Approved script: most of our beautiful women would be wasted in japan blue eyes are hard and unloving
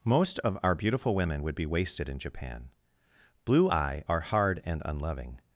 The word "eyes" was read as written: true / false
false